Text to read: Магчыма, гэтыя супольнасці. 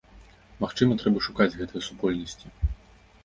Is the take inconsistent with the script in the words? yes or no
yes